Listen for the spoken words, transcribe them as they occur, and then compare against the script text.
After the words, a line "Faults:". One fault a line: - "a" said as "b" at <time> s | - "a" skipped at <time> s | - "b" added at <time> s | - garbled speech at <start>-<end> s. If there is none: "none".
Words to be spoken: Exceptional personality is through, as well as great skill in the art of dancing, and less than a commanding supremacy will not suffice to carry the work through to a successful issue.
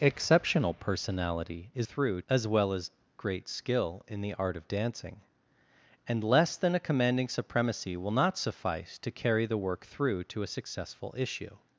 Exceptional personality is through, as well as great skill in the art of dancing, and less than a commanding supremacy will not suffice to carry the work through to a successful issue.
Faults:
none